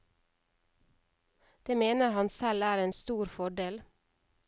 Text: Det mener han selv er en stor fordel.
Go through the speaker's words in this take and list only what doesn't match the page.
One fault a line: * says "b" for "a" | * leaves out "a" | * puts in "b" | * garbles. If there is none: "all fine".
all fine